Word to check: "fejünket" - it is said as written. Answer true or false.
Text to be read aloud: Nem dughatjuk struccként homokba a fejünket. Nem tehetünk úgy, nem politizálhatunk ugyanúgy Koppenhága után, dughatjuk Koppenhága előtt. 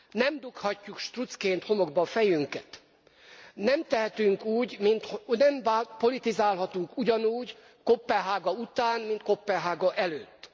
true